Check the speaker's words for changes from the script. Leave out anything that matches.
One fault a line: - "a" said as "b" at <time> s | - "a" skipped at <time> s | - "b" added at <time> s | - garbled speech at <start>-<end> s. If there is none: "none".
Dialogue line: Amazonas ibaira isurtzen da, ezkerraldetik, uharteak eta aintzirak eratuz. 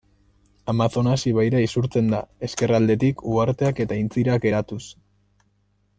none